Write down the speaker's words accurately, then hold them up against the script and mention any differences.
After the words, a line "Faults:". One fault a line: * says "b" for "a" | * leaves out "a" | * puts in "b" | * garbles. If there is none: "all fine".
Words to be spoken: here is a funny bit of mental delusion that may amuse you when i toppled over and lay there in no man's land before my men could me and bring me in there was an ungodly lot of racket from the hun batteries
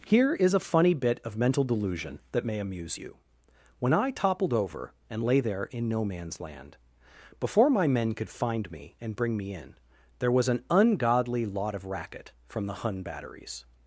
here is a funny bit of mental delusion that may amuse you when i toppled over and lay there in no man's land before my men could find me and bring me in there was an ungodly lot of racket from the hun batteries
Faults:
* puts in "find"